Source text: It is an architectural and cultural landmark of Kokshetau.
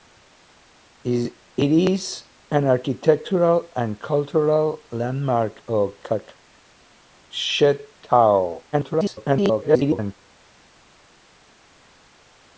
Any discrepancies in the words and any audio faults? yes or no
yes